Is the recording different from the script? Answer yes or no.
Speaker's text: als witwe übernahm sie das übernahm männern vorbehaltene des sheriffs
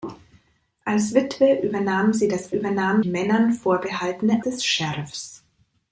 no